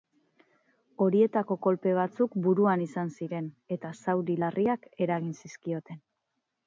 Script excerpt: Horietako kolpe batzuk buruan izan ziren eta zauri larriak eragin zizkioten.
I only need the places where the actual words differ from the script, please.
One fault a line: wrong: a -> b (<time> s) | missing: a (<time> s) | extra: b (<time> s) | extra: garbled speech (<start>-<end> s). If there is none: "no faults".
no faults